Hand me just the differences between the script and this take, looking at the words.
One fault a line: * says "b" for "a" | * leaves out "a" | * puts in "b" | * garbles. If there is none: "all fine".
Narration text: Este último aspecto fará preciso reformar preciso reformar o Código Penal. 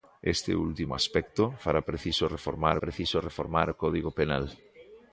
all fine